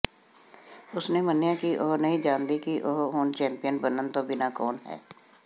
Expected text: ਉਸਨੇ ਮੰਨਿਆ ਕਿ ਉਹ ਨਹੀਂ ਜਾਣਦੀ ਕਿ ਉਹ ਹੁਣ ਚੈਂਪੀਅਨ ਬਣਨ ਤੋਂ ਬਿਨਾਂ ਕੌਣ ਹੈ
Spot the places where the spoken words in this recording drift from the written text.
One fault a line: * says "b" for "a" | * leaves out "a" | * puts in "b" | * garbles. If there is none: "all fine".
all fine